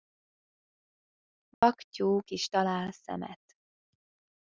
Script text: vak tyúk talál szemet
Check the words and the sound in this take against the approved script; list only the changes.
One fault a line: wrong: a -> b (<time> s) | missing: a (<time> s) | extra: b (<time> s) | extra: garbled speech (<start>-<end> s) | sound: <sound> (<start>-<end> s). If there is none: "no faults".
sound: dropout (1.5-1.6 s)
extra: is (2.3 s)